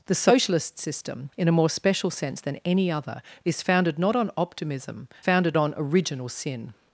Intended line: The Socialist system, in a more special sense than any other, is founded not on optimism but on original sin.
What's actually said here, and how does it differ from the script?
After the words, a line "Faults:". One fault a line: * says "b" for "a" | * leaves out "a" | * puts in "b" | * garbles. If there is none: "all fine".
The Socialist system, in a more special sense than any other, is founded not on optimism founded on original sin.
Faults:
* says "founded" for "but"